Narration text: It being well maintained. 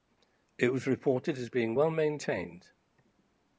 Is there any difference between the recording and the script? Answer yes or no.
yes